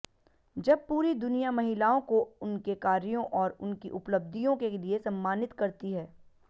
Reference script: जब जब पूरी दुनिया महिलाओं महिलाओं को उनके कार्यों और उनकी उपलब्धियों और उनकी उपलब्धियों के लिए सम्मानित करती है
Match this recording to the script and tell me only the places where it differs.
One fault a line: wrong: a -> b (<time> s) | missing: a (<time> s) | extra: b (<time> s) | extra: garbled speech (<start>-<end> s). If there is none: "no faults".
missing: जब (0.8 s)
missing: महिलाओं (2.0 s)
missing: और उनकी उपलब्धियों (4.6 s)